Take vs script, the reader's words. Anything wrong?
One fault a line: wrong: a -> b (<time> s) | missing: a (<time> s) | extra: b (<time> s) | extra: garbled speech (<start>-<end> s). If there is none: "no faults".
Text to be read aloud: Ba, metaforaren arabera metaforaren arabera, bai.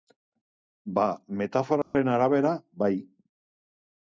missing: metaforaren arabera (2.5 s)